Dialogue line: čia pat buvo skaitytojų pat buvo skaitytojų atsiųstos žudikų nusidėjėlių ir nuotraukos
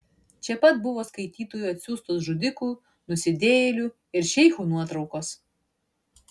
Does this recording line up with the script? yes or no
no